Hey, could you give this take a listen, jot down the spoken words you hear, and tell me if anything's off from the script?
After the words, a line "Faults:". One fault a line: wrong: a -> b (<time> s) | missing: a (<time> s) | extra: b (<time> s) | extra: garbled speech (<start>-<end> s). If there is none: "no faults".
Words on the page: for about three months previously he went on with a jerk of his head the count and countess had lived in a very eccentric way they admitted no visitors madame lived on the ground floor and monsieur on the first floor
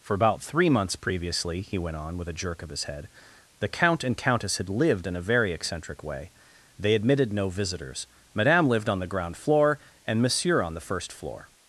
for about three months previously he went on with a jerk of his head the count and countess had lived in a very eccentric way they admitted no visitors madame lived on the ground floor and monsieur on the first floor
Faults:
no faults